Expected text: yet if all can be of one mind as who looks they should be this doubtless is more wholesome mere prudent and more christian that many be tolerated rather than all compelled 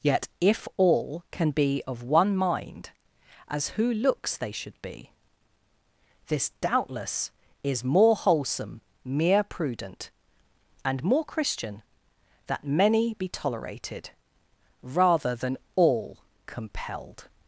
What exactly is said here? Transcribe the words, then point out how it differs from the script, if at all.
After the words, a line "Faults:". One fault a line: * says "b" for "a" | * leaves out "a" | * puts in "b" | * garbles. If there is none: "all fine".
yet if all can be of one mind as who looks they should be this doubtless is more wholesome mere prudent and more christian that many be tolerated rather than all compelled
Faults:
all fine